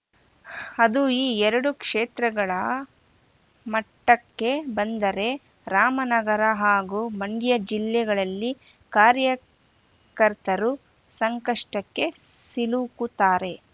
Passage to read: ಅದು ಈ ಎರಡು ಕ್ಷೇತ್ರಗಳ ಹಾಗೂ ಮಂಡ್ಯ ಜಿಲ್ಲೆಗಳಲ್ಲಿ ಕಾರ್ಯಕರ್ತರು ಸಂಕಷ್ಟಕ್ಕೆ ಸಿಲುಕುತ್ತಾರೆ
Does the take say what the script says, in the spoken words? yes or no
no